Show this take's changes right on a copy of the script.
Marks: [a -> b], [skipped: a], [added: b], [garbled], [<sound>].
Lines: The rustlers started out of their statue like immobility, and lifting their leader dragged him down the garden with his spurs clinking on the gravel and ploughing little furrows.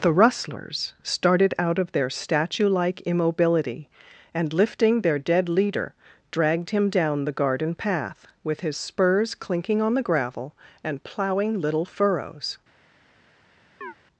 The rustlers started out of their statue like immobility, and lifting their [added: dead] leader dragged him down the garden [added: path] with his spurs clinking on the gravel and ploughing little furrows. [chirp]